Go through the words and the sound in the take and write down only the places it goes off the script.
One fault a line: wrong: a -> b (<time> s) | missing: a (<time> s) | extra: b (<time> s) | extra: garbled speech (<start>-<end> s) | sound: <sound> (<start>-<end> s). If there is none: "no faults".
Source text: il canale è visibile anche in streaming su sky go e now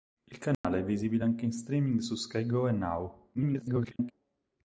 sound: dropout (0.5-0.6 s)
extra: garbled speech (3.3-4.1 s)